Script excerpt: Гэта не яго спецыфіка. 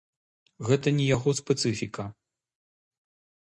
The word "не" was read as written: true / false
true